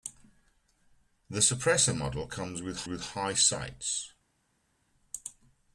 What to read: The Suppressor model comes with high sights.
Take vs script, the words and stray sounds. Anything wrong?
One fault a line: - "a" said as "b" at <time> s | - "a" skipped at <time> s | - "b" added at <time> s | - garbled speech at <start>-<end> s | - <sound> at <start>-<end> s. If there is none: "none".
- "with" added at 2.8 s